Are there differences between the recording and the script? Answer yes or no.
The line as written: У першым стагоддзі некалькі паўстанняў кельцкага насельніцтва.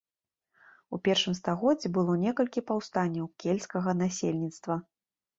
yes